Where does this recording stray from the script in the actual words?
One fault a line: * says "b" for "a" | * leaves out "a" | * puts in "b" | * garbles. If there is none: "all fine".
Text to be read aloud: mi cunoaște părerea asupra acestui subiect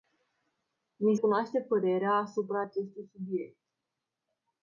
all fine